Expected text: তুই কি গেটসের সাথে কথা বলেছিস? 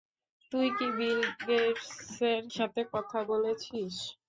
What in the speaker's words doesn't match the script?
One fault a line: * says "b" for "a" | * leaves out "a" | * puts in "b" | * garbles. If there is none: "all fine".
* puts in "বিল"